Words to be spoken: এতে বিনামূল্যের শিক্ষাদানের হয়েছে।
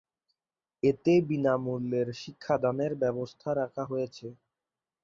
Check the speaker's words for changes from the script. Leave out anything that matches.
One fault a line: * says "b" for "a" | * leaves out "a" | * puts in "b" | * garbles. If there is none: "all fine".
* puts in "ব্যবস্থা রাখা"